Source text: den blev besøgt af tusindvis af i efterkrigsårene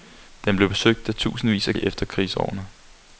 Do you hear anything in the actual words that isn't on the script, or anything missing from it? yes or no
no